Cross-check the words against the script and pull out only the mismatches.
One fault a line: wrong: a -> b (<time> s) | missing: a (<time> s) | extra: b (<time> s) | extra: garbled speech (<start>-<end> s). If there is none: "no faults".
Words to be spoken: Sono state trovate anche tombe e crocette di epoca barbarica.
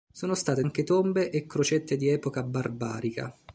missing: trovate (0.6 s)